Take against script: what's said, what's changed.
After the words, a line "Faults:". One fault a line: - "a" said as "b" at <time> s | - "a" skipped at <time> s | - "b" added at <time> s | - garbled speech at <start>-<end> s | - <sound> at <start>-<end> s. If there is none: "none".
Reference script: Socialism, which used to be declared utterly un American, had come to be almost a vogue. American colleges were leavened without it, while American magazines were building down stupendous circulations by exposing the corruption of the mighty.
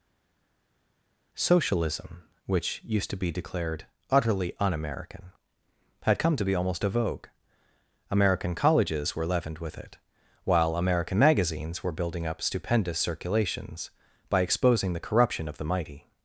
Socialism, which used to be declared utterly un American, had come to be almost a vogue. American colleges were leavened with it, while American magazines were building up stupendous circulations by exposing the corruption of the mighty.
Faults:
- "without" said as "with" at 9.6 s
- "down" said as "up" at 12.3 s